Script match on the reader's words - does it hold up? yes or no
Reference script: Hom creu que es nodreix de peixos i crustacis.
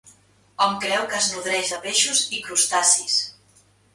yes